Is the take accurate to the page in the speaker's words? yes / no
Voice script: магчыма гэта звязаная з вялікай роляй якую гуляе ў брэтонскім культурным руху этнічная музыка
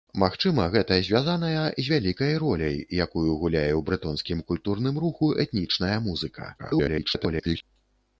no